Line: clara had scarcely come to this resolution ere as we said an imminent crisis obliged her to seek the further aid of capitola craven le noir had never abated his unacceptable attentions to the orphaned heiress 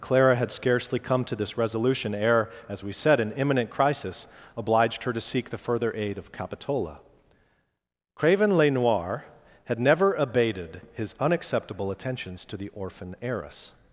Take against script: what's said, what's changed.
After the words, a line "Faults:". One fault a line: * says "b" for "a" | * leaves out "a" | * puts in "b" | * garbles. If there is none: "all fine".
clara had scarcely come to this resolution ere as we said an imminent crisis obliged her to seek the further aid of capitola craven le noir had never abated his unacceptable attentions to the orphan heiress
Faults:
* says "orphan" for "orphaned"